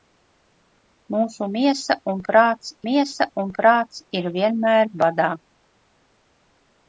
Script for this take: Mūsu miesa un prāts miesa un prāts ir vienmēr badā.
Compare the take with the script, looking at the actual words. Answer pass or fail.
pass